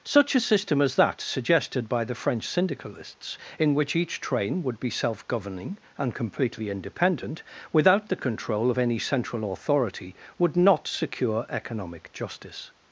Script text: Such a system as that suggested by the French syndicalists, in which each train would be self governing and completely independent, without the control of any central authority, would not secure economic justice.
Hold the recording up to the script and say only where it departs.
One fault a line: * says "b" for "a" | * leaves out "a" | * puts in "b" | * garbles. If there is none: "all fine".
all fine